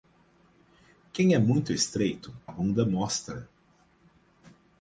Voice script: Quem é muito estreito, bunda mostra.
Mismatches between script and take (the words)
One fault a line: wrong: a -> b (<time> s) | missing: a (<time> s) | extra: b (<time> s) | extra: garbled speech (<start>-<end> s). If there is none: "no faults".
no faults